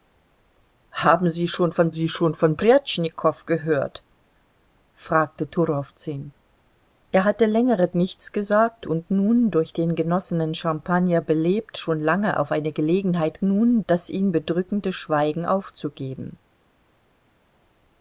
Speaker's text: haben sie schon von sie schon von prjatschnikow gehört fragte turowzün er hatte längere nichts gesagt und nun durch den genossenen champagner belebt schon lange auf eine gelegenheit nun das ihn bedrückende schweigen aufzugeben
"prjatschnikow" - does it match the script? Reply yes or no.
yes